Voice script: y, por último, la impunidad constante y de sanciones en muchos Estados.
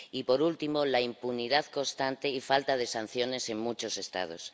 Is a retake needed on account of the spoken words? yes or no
yes